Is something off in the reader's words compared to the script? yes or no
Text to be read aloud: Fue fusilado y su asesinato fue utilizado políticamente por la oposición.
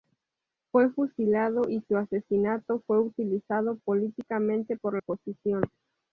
yes